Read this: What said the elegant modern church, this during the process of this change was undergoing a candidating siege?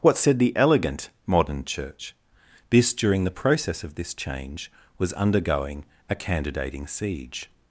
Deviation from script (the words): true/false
false